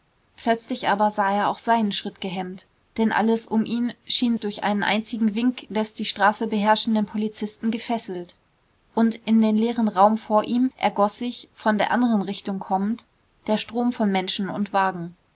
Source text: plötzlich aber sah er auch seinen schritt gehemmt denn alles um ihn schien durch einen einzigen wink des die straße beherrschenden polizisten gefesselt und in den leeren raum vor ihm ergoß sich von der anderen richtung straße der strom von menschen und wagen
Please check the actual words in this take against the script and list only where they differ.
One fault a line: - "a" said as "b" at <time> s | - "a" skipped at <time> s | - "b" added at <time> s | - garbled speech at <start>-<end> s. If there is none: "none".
- "straße" said as "kommend" at 12.6 s